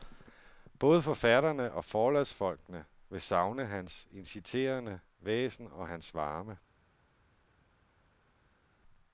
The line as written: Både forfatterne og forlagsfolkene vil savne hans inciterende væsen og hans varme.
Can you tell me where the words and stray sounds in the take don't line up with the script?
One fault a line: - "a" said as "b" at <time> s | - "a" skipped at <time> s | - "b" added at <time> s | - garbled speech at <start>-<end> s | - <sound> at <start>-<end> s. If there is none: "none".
none